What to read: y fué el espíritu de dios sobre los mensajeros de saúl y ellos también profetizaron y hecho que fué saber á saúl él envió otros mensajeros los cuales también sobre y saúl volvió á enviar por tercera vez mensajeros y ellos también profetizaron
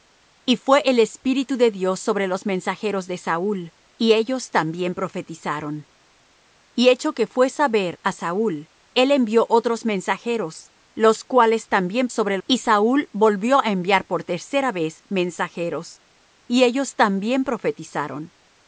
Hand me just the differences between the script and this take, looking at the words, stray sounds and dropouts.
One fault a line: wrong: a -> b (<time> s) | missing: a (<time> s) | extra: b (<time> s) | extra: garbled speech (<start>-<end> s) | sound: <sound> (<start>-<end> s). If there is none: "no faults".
no faults